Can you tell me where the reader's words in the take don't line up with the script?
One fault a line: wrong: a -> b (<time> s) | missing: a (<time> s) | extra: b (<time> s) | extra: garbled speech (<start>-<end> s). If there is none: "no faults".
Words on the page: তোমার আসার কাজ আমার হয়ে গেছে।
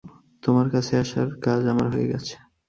extra: কাছে (0.7 s)